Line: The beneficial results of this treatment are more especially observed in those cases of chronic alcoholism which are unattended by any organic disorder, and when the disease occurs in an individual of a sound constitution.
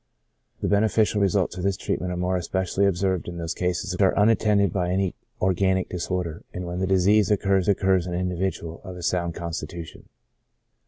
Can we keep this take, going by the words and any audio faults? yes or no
no